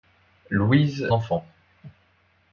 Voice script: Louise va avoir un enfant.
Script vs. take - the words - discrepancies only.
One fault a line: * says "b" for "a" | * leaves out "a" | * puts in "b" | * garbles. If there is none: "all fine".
* leaves out "va avoir un"